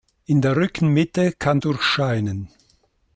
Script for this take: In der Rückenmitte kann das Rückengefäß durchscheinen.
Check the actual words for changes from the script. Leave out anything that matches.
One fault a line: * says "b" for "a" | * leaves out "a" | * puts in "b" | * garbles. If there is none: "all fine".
* leaves out "das Rückengefäß"